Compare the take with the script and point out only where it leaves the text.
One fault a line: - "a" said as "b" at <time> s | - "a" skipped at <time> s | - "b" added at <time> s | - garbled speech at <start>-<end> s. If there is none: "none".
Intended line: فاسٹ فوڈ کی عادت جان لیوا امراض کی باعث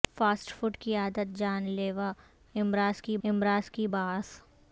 - "امراض کی" added at 3.2 s